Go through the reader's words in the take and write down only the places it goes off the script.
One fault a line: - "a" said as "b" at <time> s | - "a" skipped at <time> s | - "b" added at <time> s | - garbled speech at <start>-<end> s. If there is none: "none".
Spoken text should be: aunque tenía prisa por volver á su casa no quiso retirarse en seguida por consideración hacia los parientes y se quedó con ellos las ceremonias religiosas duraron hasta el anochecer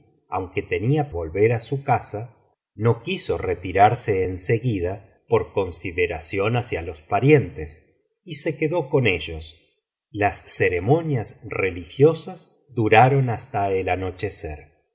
- "prisa por" skipped at 1.0 s